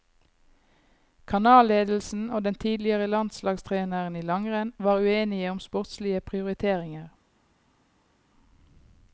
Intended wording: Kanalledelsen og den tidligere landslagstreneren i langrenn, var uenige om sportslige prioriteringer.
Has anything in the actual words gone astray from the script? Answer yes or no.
no